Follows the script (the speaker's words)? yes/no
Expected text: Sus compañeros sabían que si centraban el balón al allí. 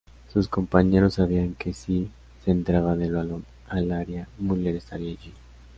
no